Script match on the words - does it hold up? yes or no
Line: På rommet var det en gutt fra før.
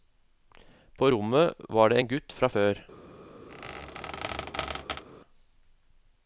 yes